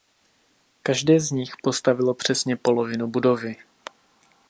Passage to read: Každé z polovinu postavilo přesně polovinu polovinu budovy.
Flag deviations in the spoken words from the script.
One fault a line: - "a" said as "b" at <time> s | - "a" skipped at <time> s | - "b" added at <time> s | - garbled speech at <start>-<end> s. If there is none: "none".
- "polovinu" said as "nich" at 1.3 s
- "polovinu" skipped at 3.1 s